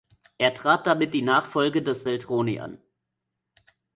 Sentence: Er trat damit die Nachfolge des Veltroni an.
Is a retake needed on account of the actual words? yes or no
no